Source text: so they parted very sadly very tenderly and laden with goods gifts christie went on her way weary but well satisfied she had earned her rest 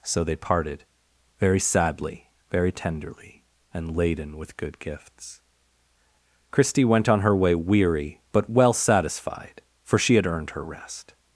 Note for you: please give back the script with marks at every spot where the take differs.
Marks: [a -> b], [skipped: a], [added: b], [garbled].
so they parted very sadly very tenderly and laden with [goods -> good] gifts christie went on her way weary but well satisfied [added: for] she had earned her rest